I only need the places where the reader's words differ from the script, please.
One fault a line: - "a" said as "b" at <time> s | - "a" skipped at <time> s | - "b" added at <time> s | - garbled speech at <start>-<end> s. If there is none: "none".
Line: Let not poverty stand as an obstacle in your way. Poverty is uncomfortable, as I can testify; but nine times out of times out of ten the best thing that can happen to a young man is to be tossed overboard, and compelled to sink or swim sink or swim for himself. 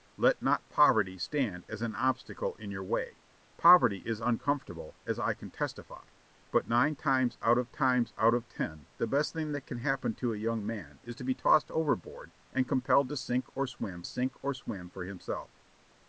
none